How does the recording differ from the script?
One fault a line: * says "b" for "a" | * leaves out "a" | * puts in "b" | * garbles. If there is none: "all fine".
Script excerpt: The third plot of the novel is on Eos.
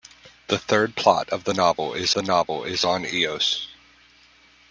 * puts in "the novel is"